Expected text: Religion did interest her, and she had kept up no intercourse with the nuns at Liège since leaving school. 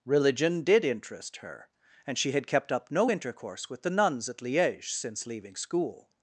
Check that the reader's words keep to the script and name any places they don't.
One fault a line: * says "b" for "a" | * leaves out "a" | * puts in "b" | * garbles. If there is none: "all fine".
all fine